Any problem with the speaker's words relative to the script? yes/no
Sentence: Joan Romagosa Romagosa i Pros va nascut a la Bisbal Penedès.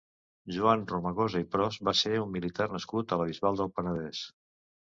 yes